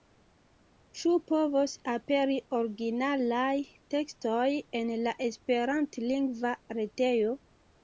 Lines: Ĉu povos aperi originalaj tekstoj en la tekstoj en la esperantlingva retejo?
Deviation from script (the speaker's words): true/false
true